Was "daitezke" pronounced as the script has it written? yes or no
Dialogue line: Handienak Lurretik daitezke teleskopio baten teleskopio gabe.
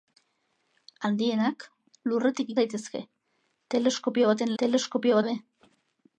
yes